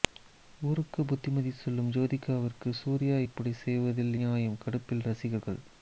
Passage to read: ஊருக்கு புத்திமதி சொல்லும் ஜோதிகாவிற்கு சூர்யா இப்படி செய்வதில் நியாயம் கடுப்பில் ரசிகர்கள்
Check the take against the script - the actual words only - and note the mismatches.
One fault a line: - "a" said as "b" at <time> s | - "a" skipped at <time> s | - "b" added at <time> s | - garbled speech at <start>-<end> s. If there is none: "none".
none